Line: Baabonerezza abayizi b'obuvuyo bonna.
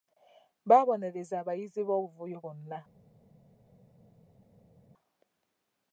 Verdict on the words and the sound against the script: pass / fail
pass